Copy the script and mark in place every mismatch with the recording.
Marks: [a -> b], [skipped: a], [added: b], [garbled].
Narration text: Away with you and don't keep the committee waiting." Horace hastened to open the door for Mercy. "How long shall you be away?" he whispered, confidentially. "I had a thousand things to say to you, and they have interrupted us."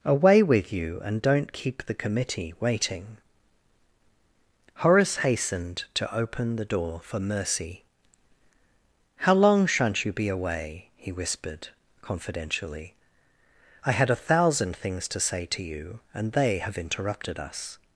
Away with you and don't keep the committee waiting." Horace hastened to open the door for Mercy. "How long [shall -> shan't] you be away?" he whispered, confidentially. "I had a thousand things to say to you, and they have interrupted us."